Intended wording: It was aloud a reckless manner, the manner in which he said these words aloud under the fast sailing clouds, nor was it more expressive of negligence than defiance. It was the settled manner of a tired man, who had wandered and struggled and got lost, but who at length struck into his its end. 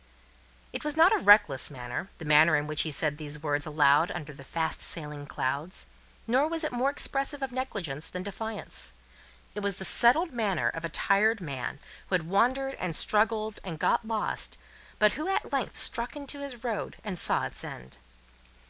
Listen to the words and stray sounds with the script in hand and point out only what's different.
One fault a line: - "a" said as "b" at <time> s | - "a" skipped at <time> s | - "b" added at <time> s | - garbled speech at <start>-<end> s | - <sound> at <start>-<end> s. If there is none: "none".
- "aloud" said as "not" at 1.0 s
- "road and saw" added at 16.6 s